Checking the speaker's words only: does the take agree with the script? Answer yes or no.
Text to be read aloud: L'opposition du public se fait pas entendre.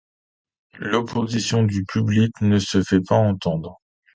no